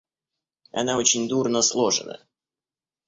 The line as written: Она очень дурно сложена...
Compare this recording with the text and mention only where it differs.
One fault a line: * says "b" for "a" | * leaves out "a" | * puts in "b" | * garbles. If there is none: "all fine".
all fine